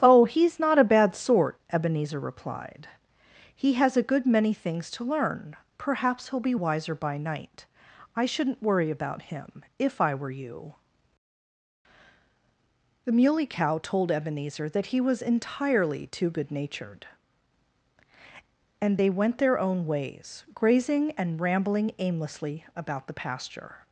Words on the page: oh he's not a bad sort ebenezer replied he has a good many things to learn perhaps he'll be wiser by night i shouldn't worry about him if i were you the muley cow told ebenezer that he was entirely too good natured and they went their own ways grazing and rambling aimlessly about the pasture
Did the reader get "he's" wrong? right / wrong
right